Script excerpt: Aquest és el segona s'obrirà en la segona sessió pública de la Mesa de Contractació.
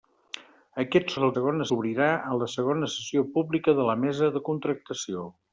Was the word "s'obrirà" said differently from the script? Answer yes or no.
no